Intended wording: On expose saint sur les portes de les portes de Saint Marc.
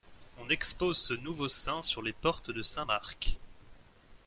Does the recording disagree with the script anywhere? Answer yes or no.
yes